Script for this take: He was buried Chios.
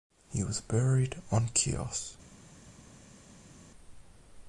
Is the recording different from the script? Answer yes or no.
yes